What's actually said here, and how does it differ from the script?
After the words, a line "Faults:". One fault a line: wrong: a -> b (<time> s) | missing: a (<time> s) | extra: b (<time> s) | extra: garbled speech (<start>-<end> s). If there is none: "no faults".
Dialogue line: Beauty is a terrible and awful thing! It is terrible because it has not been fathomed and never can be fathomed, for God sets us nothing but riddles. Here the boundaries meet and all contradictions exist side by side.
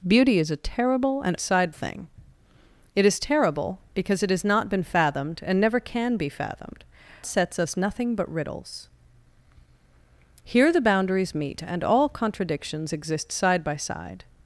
Beauty is a terrible and side thing! It is terrible because it has not been fathomed and never can be fathomed, sets us nothing but riddles. Here the boundaries meet and all contradictions exist side by side.
Faults:
wrong: awful -> side (1.4 s)
missing: for God (6.8 s)